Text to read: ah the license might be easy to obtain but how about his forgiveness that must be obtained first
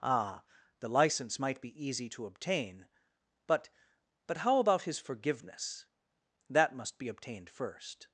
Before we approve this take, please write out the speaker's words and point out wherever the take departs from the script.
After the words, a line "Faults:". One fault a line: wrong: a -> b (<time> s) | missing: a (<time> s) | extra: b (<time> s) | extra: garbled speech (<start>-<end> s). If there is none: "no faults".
ah the license might be easy to obtain but but how about his forgiveness that must be obtained first
Faults:
extra: but (4.3 s)